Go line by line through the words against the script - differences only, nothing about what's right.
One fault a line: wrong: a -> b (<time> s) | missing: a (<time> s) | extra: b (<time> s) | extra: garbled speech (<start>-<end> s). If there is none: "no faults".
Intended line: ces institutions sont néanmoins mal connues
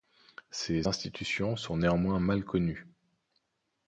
no faults